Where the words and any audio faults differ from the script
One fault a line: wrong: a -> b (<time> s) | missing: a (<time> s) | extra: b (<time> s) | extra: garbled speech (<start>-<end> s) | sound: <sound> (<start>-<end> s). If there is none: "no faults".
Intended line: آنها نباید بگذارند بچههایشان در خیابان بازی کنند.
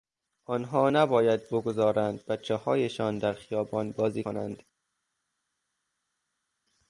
no faults